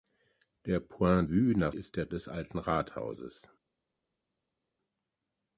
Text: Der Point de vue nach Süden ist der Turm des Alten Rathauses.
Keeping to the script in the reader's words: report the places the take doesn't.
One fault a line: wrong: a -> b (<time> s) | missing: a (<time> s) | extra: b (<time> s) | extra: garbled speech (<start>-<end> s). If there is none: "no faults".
missing: de (1.3 s)
missing: Süden (1.7 s)
missing: Turm (2.1 s)